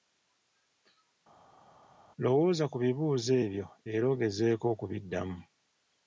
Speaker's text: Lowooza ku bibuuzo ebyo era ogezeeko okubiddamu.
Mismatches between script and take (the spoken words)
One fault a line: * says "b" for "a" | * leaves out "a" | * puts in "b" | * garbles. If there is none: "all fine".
all fine